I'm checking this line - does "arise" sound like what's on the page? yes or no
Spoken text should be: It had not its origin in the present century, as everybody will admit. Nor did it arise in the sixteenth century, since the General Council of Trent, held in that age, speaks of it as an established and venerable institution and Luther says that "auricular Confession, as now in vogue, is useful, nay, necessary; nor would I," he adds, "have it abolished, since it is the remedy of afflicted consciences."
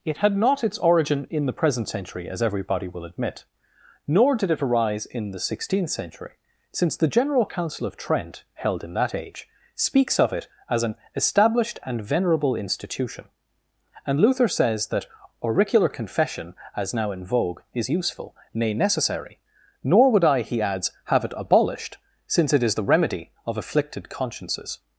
yes